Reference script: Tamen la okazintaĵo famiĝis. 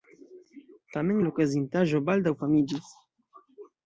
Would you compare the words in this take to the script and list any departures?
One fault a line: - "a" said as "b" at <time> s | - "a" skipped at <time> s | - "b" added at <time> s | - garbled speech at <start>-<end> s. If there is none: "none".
- "baldaŭ" added at 2.1 s